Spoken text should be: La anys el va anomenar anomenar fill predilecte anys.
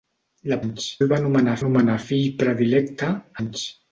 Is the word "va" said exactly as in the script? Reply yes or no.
yes